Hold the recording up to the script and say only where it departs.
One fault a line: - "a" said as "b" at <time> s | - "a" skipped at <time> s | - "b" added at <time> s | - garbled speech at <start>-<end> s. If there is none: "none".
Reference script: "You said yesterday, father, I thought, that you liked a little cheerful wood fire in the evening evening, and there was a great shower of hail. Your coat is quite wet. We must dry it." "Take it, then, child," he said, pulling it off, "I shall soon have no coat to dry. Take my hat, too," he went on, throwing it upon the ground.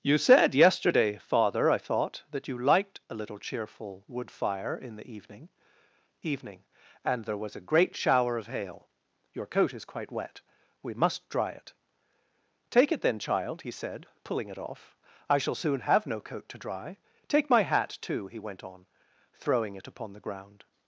none